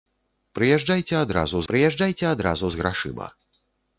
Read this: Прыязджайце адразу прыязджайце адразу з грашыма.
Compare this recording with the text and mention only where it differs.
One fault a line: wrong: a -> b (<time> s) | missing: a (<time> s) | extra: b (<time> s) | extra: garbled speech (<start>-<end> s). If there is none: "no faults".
no faults